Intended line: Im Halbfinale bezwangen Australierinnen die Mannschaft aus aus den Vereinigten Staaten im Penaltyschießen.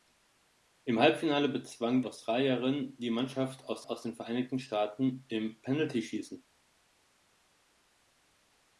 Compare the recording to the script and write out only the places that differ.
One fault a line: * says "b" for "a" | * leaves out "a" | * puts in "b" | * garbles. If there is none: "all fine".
all fine